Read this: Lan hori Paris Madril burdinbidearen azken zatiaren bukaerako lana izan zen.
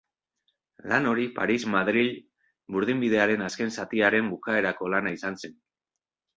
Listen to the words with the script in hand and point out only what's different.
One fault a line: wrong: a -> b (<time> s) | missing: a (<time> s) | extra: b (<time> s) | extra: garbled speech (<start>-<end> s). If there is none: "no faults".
no faults